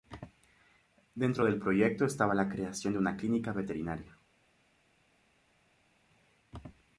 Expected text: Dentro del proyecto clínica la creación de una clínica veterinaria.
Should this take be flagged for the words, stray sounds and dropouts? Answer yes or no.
yes